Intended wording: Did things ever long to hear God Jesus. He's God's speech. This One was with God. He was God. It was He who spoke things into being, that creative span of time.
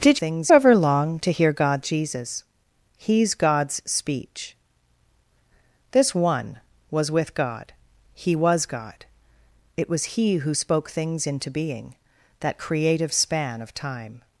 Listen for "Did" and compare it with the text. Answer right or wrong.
right